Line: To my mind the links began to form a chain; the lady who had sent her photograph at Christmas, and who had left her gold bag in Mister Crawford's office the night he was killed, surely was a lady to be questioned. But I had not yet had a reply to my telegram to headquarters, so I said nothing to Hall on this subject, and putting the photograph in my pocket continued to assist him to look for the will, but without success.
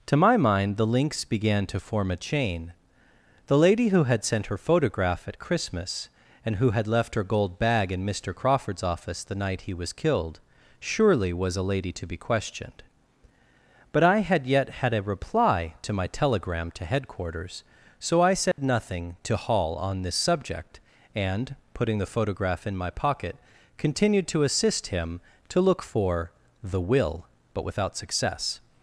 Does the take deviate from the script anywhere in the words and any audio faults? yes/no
yes